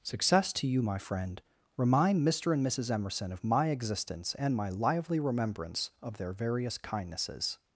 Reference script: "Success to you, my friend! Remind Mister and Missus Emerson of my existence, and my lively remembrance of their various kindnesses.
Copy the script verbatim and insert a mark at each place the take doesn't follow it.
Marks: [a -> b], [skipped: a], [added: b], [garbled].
"Success to you, my friend! Remind Mister and Missus Emerson of my existence, and my lively remembrance of their various kindnesses.